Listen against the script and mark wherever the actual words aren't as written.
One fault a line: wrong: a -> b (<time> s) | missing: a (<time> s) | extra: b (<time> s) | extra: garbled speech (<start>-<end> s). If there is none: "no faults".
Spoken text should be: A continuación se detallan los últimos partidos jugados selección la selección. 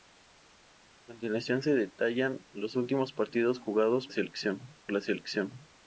no faults